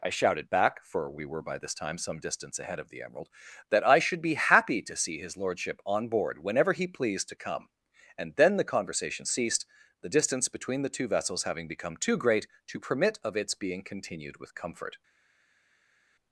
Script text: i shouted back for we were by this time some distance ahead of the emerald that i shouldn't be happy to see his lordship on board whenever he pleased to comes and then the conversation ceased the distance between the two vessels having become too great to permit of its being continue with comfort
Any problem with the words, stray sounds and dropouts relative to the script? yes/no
yes